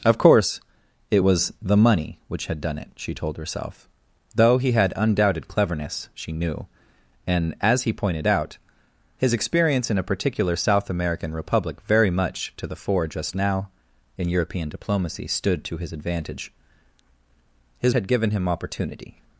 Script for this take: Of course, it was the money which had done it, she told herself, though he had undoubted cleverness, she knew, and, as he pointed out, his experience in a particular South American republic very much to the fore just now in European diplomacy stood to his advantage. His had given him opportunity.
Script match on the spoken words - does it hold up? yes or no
yes